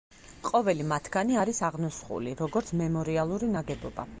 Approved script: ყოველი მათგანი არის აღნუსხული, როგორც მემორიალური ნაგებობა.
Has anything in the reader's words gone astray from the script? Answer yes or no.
no